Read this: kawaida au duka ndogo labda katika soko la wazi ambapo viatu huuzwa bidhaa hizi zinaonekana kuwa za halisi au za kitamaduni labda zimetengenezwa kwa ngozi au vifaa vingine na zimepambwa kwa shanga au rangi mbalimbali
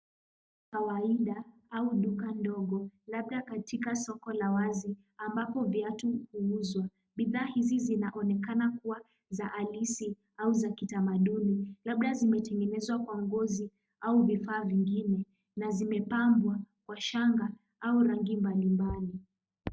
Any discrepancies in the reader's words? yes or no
no